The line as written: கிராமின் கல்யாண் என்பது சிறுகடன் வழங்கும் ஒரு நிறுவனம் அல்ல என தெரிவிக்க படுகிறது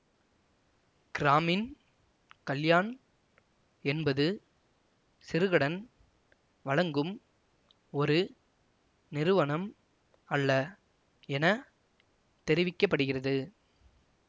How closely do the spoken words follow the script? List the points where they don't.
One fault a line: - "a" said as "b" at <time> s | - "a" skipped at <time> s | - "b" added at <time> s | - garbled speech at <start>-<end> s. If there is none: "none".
none